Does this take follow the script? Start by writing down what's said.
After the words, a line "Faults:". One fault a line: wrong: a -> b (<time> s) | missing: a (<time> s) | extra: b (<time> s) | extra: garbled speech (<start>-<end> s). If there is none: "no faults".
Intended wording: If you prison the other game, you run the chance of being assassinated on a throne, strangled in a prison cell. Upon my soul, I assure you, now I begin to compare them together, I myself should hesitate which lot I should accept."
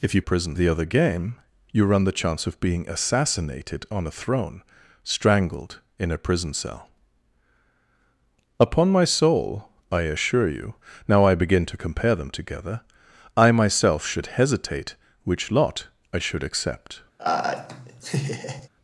If you prison the other game, you run the chance of being assassinated on a throne, strangled in a prison cell. Upon my soul, I assure you, now I begin to compare them together, I myself should hesitate which lot I should accept."
Faults:
no faults